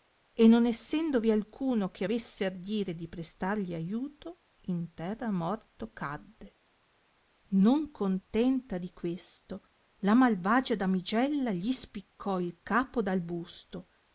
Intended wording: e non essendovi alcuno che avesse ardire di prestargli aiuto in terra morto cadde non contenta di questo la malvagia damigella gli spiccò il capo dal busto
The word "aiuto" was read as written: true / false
true